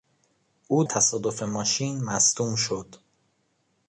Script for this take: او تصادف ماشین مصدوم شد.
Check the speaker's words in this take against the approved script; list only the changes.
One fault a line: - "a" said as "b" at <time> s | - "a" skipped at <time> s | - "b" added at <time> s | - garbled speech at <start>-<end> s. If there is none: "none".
none